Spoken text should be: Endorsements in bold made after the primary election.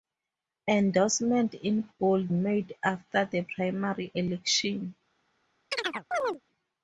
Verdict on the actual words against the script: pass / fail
pass